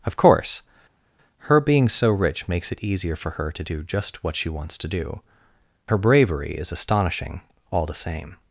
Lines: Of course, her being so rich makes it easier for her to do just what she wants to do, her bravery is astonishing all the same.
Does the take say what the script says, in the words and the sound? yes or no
yes